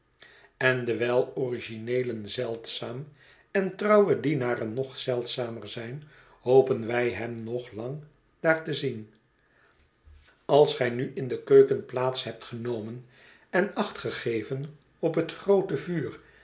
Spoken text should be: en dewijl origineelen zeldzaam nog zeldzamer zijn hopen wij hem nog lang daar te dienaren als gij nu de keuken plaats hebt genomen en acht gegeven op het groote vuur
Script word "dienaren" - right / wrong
wrong